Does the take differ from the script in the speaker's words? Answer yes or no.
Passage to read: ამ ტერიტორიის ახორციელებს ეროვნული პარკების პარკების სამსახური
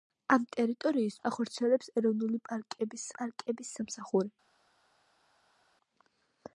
no